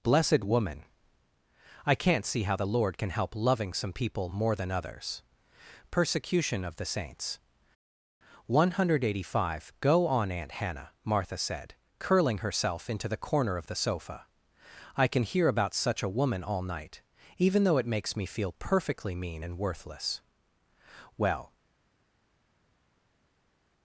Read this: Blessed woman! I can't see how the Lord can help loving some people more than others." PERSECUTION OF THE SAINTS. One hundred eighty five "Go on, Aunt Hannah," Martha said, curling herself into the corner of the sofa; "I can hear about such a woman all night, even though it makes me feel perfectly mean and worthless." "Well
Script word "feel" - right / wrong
right